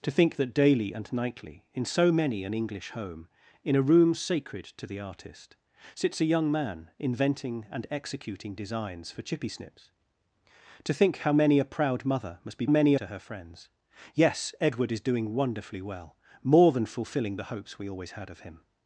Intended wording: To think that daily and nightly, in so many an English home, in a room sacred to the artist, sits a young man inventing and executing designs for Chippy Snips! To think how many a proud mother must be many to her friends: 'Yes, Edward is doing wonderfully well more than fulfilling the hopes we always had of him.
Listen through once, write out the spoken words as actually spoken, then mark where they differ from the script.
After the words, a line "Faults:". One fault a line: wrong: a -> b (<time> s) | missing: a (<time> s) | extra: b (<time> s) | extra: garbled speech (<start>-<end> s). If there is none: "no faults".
To think that daily and nightly, in so many an English home, in a room sacred to the artist, sits a young man inventing and executing designs for Chippy Snips! To think how many a proud mother must be many to her friends: 'Yes, Edward is doing wonderfully well more than fulfilling the hopes we always had of him.
Faults:
no faults